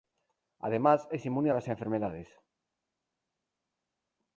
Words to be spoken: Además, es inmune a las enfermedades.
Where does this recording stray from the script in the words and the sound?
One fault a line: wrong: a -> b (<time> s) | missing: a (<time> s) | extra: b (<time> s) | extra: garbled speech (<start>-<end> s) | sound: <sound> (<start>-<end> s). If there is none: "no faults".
no faults